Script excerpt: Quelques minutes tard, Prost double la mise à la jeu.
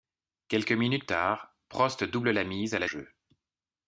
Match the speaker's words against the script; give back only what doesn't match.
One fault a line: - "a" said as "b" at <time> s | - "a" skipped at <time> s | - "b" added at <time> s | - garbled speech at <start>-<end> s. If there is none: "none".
none